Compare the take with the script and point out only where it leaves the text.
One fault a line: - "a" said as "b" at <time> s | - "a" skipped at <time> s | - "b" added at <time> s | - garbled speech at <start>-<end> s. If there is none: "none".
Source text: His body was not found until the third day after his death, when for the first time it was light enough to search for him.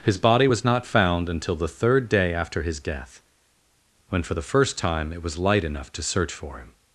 none